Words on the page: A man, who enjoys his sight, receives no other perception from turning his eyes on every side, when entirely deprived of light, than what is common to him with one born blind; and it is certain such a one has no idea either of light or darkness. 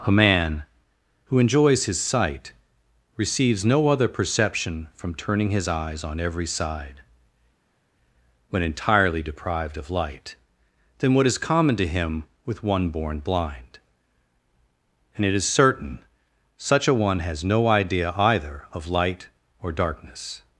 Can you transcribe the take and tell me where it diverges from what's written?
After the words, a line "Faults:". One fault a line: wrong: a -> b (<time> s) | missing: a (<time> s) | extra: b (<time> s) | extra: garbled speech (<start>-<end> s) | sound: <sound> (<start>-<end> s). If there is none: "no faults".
A man, who enjoys his sight, receives no other perception from turning his eyes on every side, when entirely deprived of light, than what is common to him with one born blind; and it is certain such a one has no idea either of light or darkness.
Faults:
no faults